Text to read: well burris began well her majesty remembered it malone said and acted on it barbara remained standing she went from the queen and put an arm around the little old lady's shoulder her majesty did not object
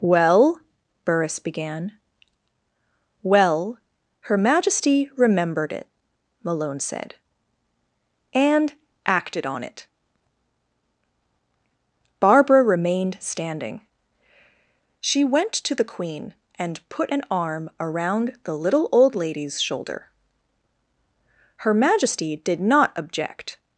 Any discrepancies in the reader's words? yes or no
yes